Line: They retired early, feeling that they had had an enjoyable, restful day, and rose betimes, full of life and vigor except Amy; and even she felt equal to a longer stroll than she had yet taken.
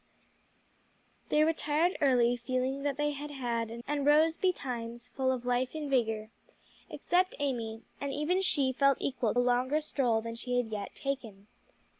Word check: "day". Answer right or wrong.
wrong